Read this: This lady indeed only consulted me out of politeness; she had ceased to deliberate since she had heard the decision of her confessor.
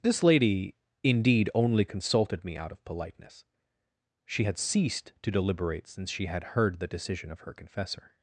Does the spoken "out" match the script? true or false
true